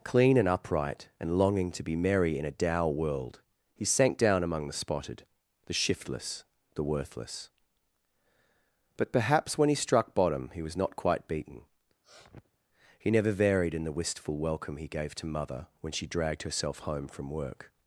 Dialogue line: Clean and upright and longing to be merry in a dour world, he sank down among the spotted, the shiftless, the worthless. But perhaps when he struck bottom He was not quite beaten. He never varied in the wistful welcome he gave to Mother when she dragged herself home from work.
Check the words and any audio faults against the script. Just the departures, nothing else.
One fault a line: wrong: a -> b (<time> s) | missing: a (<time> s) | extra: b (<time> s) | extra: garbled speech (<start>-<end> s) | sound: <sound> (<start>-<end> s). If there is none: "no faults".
sound: sniff (12.0-12.6 s)